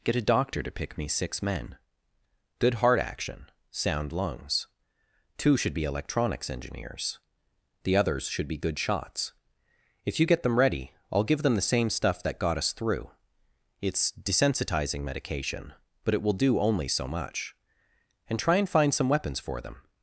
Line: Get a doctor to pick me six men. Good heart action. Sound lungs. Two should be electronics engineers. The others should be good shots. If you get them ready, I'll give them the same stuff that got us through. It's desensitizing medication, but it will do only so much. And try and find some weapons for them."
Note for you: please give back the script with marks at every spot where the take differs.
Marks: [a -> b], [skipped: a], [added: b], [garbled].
Get a doctor to pick me six men. Good heart action. Sound lungs. Two should be electronics engineers. The others should be good shots. If you get them ready, I'll give them the same stuff that got us through. It's desensitizing medication, but it will do only so much. And try and find some weapons for them."